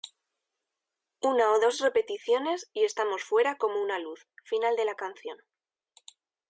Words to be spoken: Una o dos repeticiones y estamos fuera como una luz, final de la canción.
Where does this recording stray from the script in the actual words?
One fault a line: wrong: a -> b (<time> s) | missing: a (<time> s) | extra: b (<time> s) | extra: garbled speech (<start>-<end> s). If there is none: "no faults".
no faults